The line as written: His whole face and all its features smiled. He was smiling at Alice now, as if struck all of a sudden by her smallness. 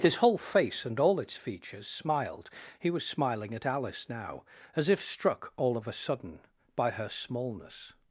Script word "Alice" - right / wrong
right